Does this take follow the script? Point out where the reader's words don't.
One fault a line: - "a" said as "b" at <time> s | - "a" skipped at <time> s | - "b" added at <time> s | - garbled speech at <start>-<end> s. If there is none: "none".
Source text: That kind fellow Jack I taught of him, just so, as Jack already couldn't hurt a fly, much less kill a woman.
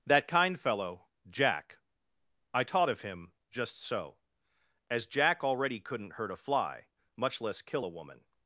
none